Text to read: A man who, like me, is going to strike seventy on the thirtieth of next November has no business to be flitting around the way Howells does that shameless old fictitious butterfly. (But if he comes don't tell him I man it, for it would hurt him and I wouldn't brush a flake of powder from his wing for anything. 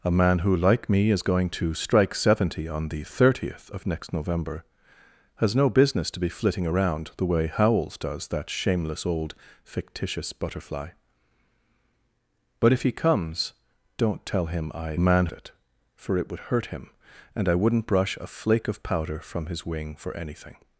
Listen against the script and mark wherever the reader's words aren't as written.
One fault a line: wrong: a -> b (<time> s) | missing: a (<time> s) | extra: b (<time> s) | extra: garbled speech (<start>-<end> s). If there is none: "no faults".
no faults